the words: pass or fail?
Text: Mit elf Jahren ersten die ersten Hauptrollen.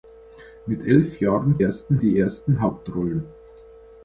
pass